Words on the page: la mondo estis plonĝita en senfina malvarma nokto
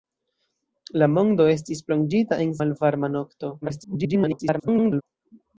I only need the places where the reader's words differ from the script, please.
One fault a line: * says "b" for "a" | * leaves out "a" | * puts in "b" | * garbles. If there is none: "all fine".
* leaves out "senfina"
* garbles